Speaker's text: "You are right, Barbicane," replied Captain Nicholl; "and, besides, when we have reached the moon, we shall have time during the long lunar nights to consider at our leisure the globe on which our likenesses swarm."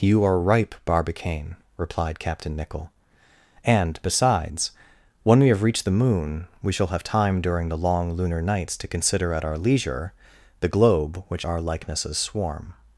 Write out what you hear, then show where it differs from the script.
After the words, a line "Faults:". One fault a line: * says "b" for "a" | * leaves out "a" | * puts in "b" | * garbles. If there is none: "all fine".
"You are ripe, Barbicane," replied Captain Nicholl; "and, besides, when we have reached the moon, we shall have time during the long lunar nights to consider at our leisure the globe which our likenesses swarm."
Faults:
* says "ripe" for "right"
* leaves out "on"